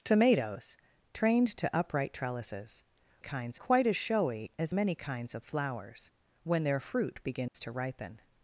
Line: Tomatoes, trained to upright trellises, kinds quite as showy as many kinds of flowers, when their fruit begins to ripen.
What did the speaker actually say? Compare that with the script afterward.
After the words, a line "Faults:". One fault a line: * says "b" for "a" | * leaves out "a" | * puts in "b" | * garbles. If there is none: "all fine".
Tomatoes, trained to upright trellises, kinds quite as showy as many kinds of flowers, when their fruit begins to ripen.
Faults:
all fine